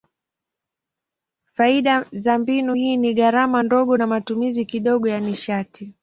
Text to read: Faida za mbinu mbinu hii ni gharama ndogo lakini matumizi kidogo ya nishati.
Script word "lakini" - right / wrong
wrong